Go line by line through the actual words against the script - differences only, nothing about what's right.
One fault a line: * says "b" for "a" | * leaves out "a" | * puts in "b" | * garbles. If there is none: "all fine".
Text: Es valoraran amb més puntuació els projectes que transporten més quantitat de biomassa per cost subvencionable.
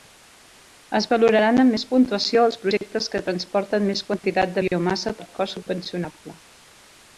all fine